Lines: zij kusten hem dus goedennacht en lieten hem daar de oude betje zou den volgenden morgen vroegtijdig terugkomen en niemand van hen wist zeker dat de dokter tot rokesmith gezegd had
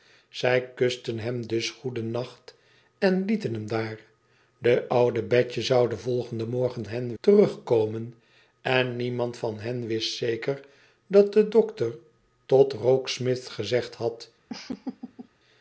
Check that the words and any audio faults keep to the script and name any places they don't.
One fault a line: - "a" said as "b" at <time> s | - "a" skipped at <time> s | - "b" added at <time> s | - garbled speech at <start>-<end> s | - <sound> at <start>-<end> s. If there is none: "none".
- "vroegtijdig" said as "hen" at 6.9 s
- laugh at 14.5-15.3 s